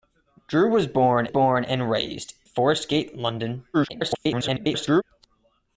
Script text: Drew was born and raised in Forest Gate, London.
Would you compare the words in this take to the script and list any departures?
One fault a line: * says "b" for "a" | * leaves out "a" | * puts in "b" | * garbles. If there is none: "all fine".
* puts in "born"
* leaves out "in"
* garbles